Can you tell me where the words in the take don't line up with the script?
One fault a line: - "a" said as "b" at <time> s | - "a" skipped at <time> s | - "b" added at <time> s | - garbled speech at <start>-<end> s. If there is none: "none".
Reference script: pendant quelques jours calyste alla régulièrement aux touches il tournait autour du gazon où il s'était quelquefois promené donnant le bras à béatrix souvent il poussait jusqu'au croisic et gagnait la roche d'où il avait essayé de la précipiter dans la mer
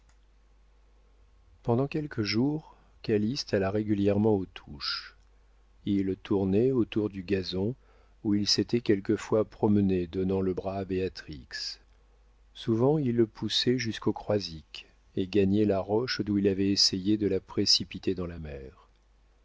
none